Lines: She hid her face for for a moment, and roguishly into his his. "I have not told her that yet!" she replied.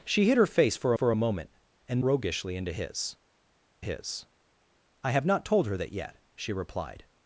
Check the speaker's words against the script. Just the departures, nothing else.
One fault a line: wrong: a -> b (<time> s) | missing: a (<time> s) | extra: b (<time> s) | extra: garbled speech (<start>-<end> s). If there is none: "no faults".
no faults